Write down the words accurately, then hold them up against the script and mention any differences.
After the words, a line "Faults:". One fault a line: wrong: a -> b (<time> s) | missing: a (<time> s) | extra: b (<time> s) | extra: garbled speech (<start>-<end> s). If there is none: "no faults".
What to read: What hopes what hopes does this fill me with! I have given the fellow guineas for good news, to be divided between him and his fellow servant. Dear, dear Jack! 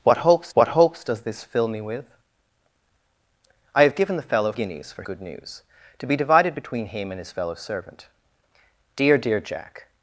What hopes what hopes does this fill me with! I have given the fellow guineas for good news, to be divided between him and his fellow servant. Dear, dear Jack!
Faults:
no faults